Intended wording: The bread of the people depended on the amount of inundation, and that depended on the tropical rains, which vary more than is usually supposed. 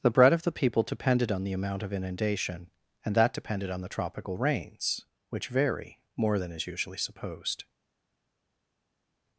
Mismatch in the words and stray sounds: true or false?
false